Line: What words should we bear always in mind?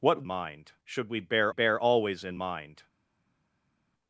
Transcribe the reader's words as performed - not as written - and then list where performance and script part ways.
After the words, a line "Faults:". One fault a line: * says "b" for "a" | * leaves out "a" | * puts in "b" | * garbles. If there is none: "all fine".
What mind should we bear bear always in mind?
Faults:
* says "mind" for "words"
* puts in "bear"